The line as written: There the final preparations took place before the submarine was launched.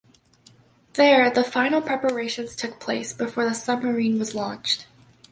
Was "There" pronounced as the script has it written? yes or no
yes